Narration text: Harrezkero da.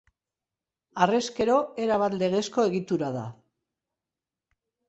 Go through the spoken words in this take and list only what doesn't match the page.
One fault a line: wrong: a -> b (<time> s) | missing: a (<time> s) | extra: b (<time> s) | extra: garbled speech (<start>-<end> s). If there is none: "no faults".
extra: erabat legezko egitura (1.9 s)